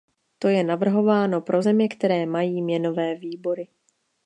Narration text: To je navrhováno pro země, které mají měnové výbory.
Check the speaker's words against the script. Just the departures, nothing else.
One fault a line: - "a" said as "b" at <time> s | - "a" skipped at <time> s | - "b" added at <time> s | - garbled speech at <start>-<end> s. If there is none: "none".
none